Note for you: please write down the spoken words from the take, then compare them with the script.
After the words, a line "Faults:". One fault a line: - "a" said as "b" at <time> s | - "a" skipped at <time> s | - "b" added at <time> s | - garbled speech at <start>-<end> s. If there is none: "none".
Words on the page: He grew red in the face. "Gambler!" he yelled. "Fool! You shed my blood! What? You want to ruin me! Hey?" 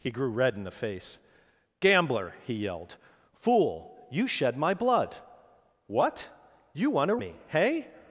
He grew red in the face. "Gambler!" he yelled. "Fool! You shed my blood! What? You want to me! Hey?"
Faults:
- "ruin" skipped at 7.2 s